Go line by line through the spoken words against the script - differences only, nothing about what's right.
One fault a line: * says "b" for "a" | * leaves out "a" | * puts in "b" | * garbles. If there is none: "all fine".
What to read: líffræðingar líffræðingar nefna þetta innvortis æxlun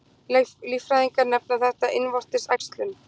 * leaves out "líffræðingar"